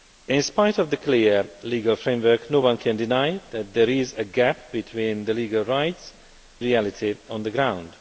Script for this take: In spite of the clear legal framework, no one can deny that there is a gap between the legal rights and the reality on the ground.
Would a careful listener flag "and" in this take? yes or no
yes